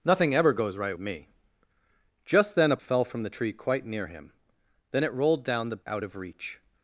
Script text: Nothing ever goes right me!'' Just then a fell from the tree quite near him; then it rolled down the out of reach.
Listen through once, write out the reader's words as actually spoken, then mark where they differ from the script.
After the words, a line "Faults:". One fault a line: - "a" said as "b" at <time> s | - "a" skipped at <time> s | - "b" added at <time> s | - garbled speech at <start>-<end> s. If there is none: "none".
Nothing ever goes right me!'' Just then a fell from the tree quite near him; then it rolled down the out of reach.
Faults:
none